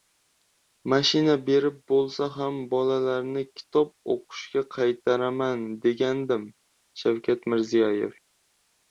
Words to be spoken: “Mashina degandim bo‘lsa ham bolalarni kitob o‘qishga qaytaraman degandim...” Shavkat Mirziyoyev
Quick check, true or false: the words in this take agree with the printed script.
false